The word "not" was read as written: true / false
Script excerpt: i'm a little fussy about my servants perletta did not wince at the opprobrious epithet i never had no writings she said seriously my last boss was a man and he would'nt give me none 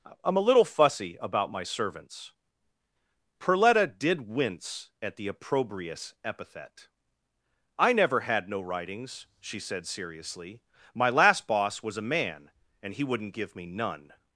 false